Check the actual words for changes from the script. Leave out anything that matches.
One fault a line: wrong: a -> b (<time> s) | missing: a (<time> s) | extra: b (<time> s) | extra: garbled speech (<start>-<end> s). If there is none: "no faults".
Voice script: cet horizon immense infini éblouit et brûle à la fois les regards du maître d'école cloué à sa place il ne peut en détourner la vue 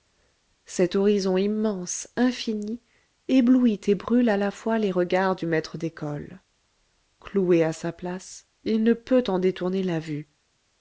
no faults